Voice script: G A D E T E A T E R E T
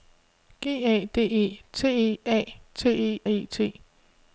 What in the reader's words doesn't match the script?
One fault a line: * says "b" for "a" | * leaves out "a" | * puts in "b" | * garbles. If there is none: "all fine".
* leaves out "R"